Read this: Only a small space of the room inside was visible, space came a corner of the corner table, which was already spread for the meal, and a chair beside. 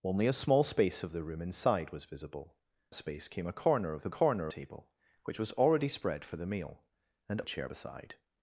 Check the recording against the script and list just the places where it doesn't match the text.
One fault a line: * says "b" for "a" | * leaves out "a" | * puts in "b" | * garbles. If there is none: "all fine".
all fine